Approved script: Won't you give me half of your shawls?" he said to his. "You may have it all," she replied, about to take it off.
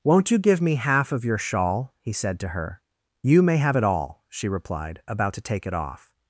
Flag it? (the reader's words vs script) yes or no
yes